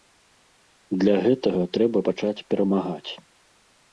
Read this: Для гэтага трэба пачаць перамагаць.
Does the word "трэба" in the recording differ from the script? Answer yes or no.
no